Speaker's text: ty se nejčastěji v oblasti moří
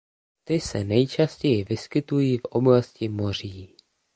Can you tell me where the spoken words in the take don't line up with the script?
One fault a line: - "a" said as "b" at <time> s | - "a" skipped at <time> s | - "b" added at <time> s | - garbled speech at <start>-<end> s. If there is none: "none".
- "vyskytují" added at 1.6 s